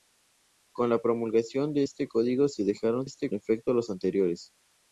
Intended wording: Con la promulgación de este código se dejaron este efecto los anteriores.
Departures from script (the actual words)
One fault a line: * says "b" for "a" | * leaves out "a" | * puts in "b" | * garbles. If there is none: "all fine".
all fine